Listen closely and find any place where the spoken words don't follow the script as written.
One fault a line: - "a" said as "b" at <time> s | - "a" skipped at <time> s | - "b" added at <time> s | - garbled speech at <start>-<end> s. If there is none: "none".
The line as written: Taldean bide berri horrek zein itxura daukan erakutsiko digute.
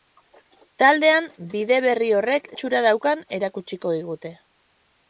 - "zein" skipped at 2.5 s